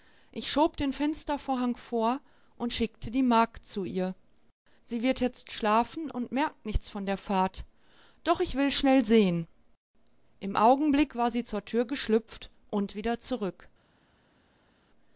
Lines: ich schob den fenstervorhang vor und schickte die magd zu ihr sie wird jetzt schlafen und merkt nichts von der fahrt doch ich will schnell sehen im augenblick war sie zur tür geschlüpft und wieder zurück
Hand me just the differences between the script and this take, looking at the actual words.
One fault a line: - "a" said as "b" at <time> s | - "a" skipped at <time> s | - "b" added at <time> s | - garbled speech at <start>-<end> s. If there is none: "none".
none